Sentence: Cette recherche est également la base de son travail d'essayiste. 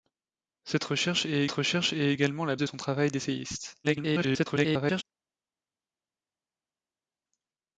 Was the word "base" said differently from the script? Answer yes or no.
yes